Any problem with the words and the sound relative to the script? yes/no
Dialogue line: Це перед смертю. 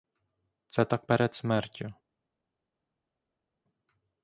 yes